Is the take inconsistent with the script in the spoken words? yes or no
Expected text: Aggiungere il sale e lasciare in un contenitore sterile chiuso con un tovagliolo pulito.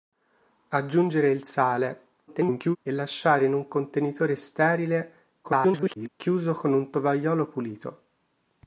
yes